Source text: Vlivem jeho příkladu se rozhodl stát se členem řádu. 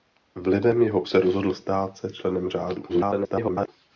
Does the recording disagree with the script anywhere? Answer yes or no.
yes